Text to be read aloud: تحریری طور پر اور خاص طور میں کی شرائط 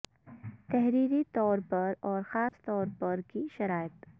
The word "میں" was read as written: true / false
false